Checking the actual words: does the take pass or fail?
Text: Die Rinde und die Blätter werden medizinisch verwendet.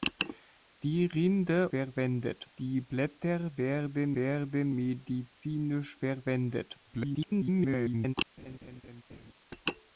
fail